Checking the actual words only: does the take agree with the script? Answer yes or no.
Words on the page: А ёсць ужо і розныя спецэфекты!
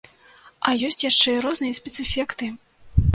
no